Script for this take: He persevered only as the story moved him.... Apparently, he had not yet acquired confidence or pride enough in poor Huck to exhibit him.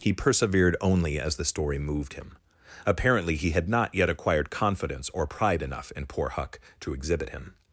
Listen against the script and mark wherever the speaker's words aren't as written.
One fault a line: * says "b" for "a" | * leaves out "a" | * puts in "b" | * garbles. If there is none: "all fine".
all fine